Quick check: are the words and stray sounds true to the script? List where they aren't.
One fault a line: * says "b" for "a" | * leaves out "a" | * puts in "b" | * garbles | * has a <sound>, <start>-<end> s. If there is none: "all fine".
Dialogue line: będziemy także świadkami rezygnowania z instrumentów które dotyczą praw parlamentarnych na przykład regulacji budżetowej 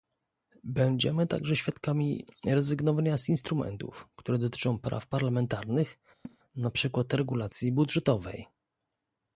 * has a laugh, 6.2-6.4 s